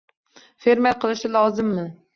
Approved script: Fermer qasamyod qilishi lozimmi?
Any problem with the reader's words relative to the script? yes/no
yes